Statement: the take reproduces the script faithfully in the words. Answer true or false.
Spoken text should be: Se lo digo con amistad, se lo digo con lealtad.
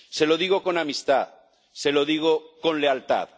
true